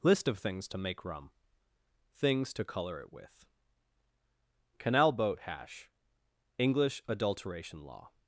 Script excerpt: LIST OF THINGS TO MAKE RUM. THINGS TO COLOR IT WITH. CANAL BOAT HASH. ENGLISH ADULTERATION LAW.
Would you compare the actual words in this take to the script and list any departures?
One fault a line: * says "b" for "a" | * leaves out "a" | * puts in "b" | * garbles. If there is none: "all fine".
all fine